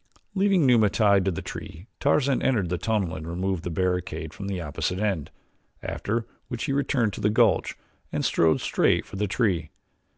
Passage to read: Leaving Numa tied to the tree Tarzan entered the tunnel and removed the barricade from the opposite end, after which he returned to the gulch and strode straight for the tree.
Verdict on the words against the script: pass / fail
pass